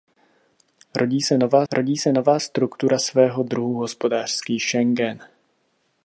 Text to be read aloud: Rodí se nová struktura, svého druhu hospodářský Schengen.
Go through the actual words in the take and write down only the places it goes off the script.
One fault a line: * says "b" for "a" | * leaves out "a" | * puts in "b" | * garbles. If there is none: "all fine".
* puts in "rodí se nová"